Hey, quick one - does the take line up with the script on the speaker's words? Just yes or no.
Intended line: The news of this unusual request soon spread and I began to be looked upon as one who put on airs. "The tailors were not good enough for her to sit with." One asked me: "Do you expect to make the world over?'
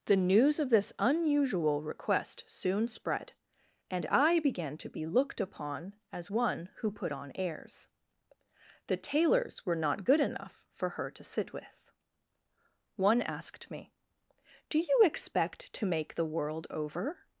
yes